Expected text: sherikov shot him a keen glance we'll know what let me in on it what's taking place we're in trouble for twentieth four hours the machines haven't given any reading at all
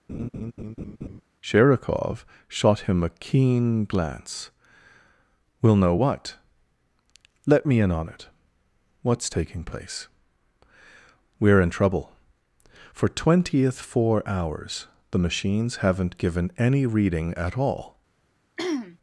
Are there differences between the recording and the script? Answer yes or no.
no